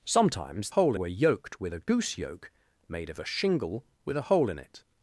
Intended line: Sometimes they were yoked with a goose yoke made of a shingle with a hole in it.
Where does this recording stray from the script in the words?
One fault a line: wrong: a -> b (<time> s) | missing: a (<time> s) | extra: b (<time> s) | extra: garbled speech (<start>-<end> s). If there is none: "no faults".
wrong: they -> hole (0.7 s)